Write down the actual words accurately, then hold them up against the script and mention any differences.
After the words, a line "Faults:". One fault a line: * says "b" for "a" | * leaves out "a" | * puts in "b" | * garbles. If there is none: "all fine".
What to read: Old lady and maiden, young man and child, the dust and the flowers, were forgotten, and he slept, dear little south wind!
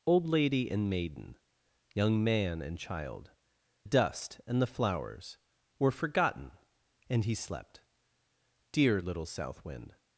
Old lady and maiden, young man and child, dust and the flowers, were forgotten, and he slept, dear little south wind!
Faults:
* leaves out "the"